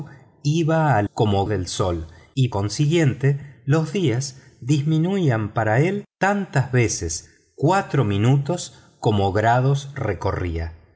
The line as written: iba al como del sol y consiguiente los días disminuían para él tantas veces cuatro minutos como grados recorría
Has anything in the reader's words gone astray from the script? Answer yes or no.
no